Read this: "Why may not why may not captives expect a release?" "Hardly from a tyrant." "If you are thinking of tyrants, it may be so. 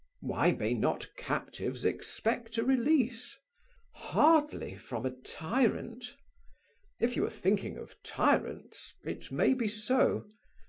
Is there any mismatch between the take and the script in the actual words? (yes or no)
yes